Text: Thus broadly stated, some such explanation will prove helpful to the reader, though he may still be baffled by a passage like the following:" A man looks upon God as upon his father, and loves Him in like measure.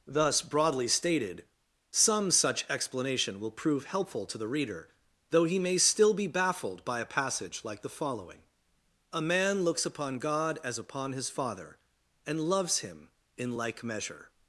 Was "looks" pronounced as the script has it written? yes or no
yes